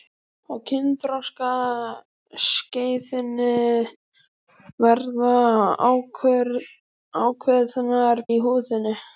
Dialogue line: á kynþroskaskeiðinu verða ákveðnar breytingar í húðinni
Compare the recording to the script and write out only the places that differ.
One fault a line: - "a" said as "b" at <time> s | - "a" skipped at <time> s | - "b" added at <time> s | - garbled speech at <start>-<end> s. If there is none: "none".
- "breytingar" skipped at 8.2 s